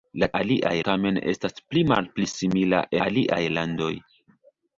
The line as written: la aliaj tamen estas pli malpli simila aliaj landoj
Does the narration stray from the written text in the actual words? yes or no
no